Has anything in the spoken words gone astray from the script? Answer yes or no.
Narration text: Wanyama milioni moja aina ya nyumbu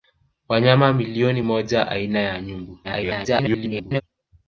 yes